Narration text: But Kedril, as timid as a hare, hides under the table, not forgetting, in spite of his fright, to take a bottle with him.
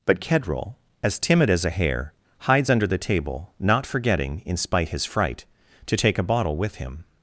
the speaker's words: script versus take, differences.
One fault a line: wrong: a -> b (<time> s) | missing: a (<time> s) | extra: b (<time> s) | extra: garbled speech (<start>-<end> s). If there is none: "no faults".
missing: of (4.9 s)